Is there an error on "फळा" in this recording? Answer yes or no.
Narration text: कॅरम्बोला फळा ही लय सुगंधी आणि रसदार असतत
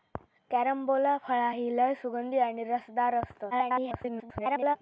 no